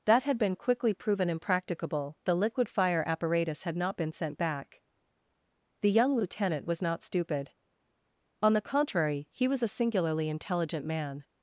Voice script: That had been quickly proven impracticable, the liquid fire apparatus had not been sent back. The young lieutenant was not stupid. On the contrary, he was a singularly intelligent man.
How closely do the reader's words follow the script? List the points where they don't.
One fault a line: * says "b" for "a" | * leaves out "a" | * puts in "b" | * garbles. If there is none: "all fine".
all fine